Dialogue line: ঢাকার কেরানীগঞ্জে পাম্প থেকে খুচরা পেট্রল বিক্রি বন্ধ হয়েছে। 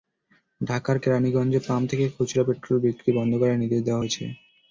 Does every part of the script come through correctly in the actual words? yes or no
no